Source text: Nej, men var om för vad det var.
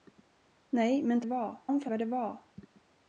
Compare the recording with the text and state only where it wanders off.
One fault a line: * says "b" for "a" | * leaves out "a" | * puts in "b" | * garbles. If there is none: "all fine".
all fine